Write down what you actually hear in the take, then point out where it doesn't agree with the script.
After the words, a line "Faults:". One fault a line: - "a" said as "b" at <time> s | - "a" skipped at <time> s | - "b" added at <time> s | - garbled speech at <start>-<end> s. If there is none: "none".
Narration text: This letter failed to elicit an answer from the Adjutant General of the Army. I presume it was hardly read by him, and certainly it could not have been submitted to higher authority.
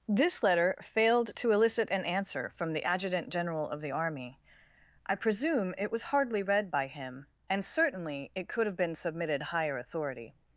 This letter failed to elicit an answer from the Adjutant General of the Army. I presume it was hardly read by him, and certainly it could have been submitted higher authority.
Faults:
- "not" skipped at 8.7 s
- "to" skipped at 9.4 s